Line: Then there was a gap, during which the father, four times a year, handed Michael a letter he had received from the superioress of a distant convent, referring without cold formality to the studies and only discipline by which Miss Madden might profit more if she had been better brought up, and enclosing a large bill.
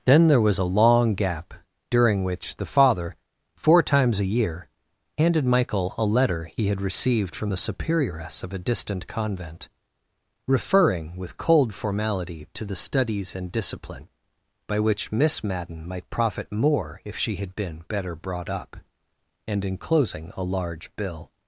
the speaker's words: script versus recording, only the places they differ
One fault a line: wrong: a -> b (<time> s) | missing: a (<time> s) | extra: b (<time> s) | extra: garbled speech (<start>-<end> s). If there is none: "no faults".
extra: long (0.7 s)
wrong: without -> with (11.2 s)
missing: only (13.5 s)